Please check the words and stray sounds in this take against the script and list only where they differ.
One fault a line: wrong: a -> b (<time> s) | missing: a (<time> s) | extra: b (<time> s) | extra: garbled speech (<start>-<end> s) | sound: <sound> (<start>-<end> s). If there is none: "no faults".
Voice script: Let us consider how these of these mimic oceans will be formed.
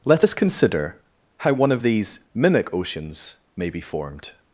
wrong: these -> one (1.5 s)
wrong: will -> may (3.6 s)